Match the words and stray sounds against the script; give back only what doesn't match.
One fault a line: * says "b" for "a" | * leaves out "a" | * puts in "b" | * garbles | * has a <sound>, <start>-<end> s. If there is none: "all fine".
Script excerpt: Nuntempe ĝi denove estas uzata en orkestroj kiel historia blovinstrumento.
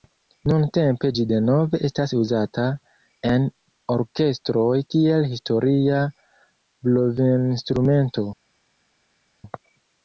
all fine